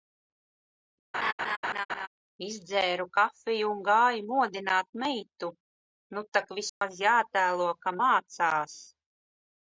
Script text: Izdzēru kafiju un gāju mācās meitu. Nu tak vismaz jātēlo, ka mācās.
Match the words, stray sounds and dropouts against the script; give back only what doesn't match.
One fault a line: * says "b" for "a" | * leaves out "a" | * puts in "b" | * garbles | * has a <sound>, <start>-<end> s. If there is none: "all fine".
* has a laugh, 1.1-2.1 s
* says "modināt" for "mācās"
* has a dropout, 6.7-6.8 s